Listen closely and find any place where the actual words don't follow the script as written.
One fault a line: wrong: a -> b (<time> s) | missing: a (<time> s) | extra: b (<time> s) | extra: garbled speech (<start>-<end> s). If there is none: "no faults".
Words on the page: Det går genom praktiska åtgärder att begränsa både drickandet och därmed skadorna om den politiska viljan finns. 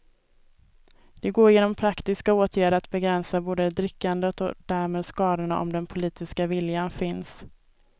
no faults